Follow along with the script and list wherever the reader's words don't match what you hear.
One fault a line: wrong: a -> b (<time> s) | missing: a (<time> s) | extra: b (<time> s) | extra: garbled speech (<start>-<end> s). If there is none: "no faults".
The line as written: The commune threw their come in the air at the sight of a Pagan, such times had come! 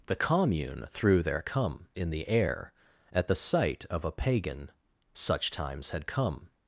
no faults